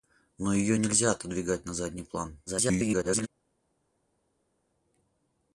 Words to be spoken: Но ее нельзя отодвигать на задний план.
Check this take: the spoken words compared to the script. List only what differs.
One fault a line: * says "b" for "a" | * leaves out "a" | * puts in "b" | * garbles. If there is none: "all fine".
* garbles